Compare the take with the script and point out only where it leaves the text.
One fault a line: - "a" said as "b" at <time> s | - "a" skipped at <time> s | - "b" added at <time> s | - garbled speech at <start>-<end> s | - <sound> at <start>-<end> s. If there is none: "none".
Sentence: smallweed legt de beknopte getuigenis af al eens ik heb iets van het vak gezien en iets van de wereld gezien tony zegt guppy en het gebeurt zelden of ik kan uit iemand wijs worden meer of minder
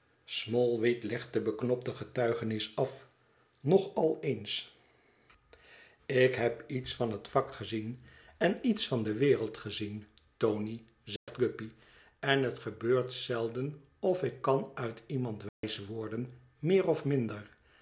- "nog" added at 3.6 s
- dropout at 11.2-11.3 s
- dropout at 15.5-15.6 s